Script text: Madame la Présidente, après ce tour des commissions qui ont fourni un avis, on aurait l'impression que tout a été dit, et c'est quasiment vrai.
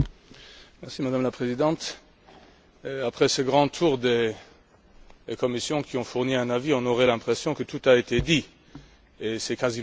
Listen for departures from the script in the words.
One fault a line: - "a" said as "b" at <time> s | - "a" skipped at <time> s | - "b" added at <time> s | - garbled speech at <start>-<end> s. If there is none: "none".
- "grand" added at 3.4 s